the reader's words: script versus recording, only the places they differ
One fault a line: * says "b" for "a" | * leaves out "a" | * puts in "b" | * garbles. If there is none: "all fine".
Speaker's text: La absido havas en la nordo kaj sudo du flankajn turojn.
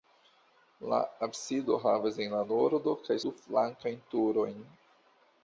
* leaves out "sudo"